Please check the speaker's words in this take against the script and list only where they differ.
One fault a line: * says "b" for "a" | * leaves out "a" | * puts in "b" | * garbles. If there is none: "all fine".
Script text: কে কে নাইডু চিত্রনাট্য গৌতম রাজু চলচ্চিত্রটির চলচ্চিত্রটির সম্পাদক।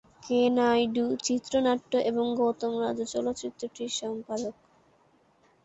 * leaves out "কে"
* puts in "এবং"
* leaves out "চলচ্চিত্রটির"